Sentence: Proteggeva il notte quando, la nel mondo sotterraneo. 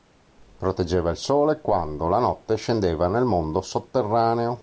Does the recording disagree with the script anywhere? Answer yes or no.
yes